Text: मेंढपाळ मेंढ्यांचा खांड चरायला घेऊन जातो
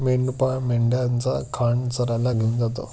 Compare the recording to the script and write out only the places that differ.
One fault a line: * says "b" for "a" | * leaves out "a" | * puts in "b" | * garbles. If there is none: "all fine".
all fine